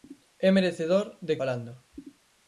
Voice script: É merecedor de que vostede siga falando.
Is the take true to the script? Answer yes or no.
no